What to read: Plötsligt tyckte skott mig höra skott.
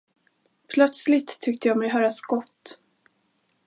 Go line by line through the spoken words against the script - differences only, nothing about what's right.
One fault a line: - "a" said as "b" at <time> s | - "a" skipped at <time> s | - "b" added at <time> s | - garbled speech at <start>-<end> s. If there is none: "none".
- "skott" said as "jag" at 1.7 s